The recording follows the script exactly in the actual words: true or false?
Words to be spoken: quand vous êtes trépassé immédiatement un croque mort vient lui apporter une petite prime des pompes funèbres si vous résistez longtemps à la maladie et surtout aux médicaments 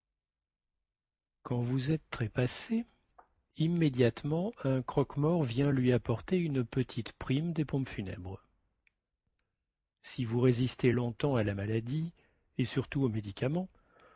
true